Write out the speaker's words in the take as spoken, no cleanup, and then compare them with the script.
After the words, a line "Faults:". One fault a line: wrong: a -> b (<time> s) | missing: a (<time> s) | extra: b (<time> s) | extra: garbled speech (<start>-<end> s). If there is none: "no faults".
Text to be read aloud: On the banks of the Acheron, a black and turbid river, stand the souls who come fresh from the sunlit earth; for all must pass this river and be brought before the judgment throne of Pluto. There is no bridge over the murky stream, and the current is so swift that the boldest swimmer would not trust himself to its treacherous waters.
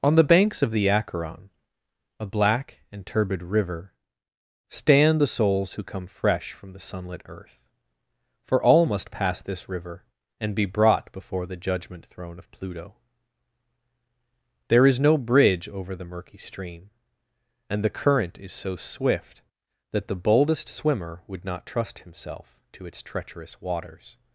On the banks of the Acheron, a black and turbid river, stand the souls who come fresh from the sunlit earth; for all must pass this river and be brought before the judgment throne of Pluto. There is no bridge over the murky stream, and the current is so swift that the boldest swimmer would not trust himself to its treacherous waters.
Faults:
no faults